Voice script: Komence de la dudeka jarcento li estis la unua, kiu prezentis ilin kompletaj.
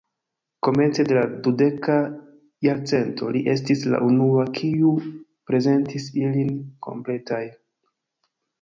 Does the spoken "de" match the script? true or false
true